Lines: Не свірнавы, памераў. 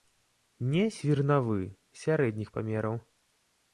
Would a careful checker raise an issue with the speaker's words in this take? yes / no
yes